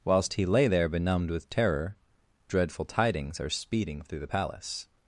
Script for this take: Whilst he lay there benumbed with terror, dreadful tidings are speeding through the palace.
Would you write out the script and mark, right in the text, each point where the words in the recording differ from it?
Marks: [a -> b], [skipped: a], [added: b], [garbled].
Whilst he lay there benumbed with terror, dreadful tidings are speeding through the palace.